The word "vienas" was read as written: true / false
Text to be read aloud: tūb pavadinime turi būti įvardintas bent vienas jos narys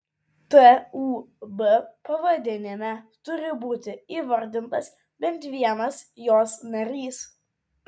true